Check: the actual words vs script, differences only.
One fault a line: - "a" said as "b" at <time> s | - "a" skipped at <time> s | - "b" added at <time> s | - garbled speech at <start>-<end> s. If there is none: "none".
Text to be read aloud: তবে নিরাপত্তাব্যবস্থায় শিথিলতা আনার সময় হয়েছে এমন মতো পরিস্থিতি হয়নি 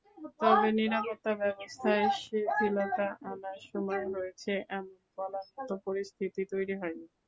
- "বলার" added at 5.2 s
- "তৈরি" added at 6.5 s